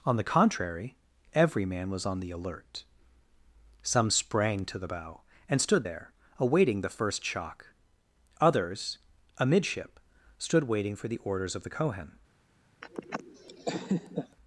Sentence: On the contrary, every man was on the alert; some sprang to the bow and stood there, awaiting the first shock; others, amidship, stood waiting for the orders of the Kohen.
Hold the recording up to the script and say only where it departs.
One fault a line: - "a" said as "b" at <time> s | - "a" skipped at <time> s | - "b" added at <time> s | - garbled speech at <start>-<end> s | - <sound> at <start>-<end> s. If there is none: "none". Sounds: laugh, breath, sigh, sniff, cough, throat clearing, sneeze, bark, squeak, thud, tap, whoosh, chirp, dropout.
- laugh at 12.8-14.4 s